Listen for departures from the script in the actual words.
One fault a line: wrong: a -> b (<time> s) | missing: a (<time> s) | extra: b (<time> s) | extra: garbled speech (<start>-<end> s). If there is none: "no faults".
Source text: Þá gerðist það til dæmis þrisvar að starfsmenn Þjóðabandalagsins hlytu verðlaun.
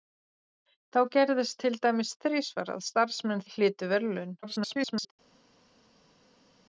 missing: það (1.6 s)
missing: Þjóðabandalagsins (3.5 s)
extra: garbled speech (4.4-5.1 s)